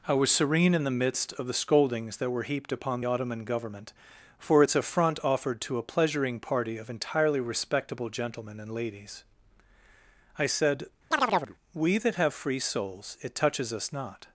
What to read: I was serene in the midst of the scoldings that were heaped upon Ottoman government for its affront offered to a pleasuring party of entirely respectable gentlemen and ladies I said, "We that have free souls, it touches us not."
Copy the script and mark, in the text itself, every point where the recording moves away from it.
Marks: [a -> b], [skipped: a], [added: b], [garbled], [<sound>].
I was serene in the midst of the scoldings that were heaped upon Ottoman government for its affront offered to a pleasuring party of entirely respectable gentlemen and ladies I said, [chirp] "We that have free souls, it touches us not."